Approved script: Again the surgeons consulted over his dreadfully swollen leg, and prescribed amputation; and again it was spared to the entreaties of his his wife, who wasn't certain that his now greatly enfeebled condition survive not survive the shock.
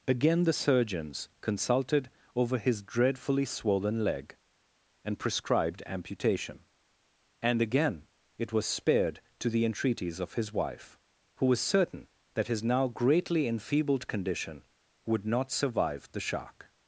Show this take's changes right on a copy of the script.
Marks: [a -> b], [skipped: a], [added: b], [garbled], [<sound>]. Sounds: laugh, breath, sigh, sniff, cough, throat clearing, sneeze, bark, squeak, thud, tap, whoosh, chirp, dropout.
Again the surgeons consulted over his dreadfully swollen leg, and prescribed amputation; and again it was spared to the entreaties of his [skipped: his] wife, who [wasn't -> was] certain that his now greatly enfeebled condition [survive -> would] not survive the shock.